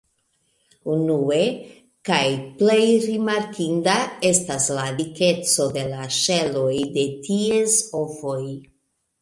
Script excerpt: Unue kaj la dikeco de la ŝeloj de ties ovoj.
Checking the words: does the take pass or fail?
fail